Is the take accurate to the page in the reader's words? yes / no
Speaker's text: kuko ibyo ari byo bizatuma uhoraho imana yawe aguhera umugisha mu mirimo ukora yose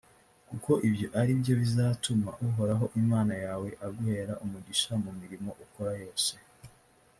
yes